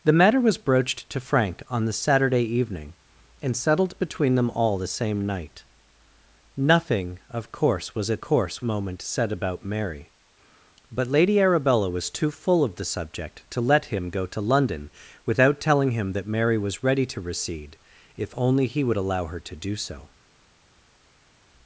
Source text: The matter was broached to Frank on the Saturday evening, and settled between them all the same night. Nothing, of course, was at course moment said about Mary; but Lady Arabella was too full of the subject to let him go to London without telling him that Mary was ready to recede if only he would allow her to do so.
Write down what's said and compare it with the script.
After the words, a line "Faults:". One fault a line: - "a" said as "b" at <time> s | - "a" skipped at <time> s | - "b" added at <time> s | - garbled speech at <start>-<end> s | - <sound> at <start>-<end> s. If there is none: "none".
The matter was broached to Frank on the Saturday evening, and settled between them all the same night. Nothing, of course, was at course moment said about Mary; but Lady Arabella was too full of the subject to let him go to London without telling him that Mary was ready to recede if only he would allow her to do so.
Faults:
none